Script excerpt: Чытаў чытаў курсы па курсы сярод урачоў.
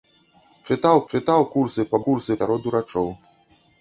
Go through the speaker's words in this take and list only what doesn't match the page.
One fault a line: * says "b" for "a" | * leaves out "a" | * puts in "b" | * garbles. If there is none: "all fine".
all fine